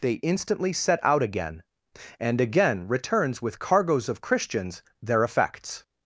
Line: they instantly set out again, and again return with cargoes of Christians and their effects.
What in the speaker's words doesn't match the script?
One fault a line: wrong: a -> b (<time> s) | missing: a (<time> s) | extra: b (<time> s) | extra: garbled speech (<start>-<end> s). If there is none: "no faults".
wrong: return -> returns (2.9 s)
missing: and (4.8 s)